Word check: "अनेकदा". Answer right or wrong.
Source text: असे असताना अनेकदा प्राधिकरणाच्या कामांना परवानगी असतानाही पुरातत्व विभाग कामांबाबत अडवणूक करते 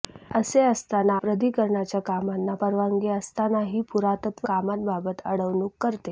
wrong